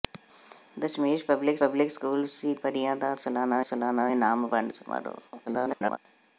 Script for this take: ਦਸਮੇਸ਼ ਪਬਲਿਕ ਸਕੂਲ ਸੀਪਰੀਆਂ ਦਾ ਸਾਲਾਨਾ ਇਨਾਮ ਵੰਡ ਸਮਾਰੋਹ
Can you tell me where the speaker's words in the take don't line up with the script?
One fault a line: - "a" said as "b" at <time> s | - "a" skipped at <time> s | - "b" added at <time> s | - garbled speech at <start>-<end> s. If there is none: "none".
- "ਪਬਲਿਕ" added at 1.6 s
- "ਸਾਲਾਨਾ" added at 3.6 s
- garbled speech at 5.5-6.0 s